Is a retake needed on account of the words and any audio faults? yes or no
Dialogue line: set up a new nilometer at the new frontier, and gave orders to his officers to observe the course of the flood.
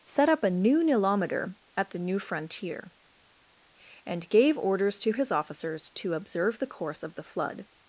no